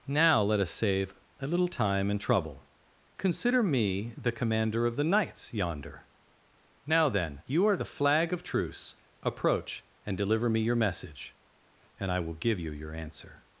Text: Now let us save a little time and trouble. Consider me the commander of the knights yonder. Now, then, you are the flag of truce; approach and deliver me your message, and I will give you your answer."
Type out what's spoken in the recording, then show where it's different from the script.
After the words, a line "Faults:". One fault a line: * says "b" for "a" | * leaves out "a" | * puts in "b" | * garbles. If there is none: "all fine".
Now let us save a little time and trouble. Consider me the commander of the knights yonder. Now, then, you are the flag of truce; approach and deliver me your message, and I will give you your answer."
Faults:
all fine